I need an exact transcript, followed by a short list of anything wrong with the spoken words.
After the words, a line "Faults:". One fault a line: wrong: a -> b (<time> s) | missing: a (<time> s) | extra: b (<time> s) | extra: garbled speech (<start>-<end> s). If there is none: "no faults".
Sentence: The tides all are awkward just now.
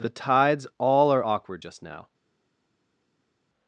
The tides all are awkward just now.
Faults:
no faults